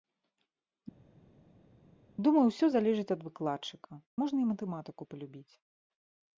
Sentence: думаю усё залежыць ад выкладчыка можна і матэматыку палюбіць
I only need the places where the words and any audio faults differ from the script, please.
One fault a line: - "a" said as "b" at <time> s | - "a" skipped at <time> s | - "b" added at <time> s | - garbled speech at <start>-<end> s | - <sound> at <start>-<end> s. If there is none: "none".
none